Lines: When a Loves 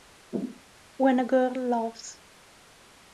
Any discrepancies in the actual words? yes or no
yes